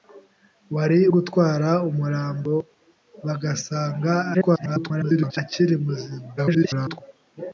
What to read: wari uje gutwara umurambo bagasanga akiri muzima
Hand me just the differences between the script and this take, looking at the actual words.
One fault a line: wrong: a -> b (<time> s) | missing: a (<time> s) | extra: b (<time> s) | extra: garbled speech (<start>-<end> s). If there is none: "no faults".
missing: uje (1.0 s)
extra: garbled speech (4.3-5.4 s)
extra: garbled speech (6.4-7.0 s)